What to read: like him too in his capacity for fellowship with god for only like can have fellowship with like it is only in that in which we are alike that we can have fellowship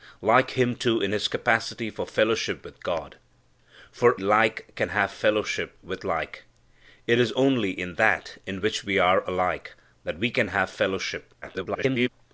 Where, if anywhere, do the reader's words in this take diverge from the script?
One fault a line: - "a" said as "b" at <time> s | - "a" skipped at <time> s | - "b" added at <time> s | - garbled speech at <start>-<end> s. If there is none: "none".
- "only" skipped at 4.2 s
- garbled speech at 11.4-12.1 s